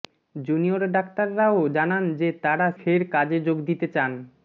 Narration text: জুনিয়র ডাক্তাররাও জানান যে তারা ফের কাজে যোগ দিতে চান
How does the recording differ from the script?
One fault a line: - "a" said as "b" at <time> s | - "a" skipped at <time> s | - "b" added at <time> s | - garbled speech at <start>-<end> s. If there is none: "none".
none